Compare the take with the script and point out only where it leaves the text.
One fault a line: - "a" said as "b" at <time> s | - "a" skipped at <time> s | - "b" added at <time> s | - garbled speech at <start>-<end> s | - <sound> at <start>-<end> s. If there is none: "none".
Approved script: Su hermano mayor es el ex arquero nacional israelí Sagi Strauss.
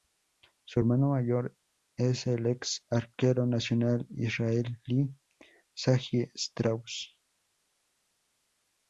none